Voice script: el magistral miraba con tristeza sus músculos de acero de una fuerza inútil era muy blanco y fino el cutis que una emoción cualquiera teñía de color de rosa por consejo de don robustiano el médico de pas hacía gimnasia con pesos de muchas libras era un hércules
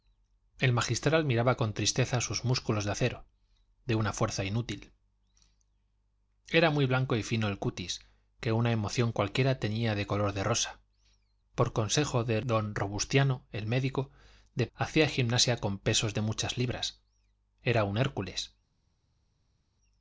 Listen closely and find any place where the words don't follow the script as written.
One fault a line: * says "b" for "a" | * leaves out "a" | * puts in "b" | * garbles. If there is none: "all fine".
* leaves out "pas"